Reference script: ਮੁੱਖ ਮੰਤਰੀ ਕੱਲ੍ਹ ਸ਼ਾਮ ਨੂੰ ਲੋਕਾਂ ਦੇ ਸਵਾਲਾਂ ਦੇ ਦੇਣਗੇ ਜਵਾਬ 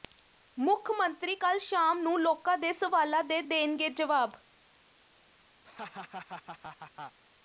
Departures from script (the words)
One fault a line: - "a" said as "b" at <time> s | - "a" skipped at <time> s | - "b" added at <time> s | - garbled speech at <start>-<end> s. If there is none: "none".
none